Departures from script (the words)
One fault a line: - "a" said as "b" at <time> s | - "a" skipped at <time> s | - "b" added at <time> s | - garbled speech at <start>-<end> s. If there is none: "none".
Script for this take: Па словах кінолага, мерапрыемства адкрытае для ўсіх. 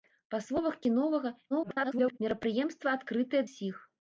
- garbled speech at 1.5-2.2 s
- "для" skipped at 3.4 s